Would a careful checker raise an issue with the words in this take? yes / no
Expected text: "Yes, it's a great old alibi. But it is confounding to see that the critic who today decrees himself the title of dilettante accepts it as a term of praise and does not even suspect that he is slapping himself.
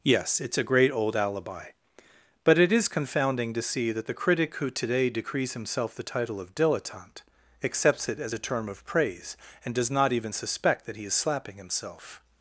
no